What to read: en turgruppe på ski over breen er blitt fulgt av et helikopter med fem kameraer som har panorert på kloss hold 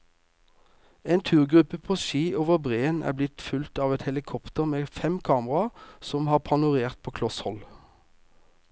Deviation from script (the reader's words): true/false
false